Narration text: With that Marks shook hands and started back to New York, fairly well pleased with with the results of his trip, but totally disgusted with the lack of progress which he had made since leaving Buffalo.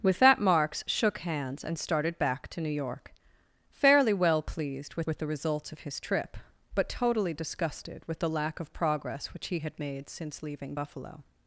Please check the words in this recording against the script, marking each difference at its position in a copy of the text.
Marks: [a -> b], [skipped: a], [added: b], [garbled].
With that Marks shook hands and started back to New York, fairly well pleased with with the results of his trip, but totally disgusted with the lack of progress which he had made since leaving Buffalo.